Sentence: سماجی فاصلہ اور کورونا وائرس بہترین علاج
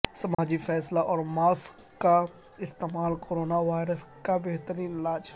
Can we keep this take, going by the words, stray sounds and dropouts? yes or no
no